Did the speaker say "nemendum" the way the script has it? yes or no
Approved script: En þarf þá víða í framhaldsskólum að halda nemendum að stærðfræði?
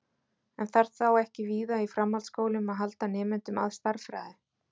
yes